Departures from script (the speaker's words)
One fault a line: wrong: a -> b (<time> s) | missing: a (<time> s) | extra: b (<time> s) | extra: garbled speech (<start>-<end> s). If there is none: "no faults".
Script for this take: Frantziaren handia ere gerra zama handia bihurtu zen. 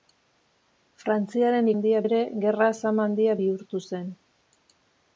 no faults